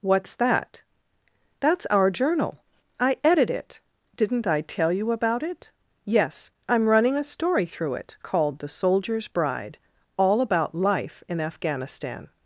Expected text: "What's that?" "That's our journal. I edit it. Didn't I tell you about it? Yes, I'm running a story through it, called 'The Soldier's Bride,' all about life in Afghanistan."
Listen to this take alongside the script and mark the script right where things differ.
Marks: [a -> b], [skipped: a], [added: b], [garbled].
"What's that?" "That's our journal. I edit it. Didn't I tell you about it? Yes, I'm running a story through it, called 'The Soldier's Bride,' all about life in Afghanistan."